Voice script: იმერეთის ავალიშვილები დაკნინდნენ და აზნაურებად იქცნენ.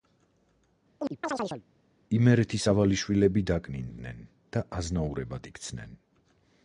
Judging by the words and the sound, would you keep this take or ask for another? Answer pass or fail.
fail